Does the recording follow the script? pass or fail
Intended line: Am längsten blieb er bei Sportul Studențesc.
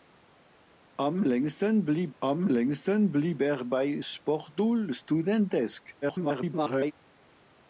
fail